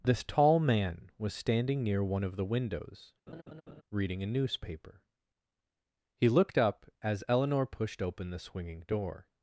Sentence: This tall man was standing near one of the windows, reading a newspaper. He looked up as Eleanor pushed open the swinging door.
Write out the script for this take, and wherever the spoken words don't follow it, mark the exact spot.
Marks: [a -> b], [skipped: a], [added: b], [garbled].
This tall man was standing near one of the windows, reading a newspaper. He looked up as Eleanor pushed open the swinging door.